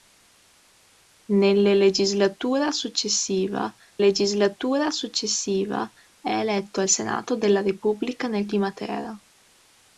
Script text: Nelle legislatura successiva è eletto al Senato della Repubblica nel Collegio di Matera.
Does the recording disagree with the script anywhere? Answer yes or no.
yes